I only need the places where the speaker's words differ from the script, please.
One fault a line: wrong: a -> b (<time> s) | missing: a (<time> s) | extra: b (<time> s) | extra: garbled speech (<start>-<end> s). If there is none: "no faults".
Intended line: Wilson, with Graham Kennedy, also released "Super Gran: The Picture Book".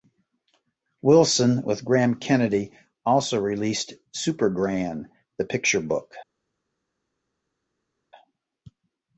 no faults